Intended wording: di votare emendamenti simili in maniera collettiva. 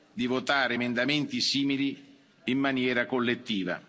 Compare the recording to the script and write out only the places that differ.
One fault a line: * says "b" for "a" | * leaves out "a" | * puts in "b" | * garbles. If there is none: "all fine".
all fine